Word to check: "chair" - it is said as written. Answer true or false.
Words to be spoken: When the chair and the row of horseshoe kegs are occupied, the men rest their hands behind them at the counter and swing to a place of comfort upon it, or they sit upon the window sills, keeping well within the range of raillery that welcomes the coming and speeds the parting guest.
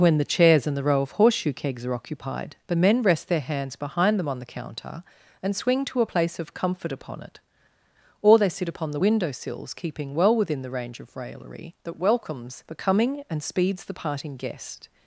false